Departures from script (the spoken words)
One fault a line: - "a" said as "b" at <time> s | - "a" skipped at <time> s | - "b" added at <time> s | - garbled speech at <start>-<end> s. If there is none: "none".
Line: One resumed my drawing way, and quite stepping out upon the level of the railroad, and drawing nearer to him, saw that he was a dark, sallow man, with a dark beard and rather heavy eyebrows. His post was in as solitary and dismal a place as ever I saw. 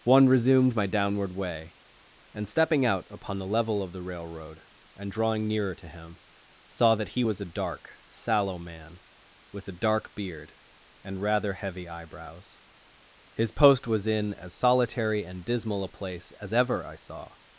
- "drawing" said as "downward" at 0.9 s
- "quite" skipped at 2.5 s